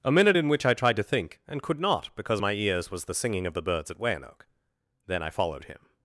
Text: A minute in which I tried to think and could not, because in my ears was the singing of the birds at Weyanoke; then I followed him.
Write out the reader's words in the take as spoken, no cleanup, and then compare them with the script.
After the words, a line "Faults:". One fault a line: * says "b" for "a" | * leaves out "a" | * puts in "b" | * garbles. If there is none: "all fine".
A minute in which I tried to think and could not, because my ears was the singing of the birds at Weyanoke; then I followed him.
Faults:
* leaves out "in"